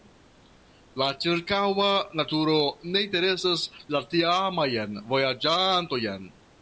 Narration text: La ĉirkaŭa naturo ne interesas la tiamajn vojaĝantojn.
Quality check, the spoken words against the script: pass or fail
pass